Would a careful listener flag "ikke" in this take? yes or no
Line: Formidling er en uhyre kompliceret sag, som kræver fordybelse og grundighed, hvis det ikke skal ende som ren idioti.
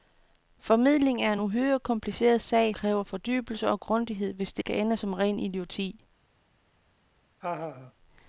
yes